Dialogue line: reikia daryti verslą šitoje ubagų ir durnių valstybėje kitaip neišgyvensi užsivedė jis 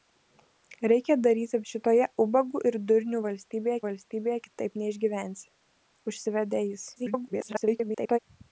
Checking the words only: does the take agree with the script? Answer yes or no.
no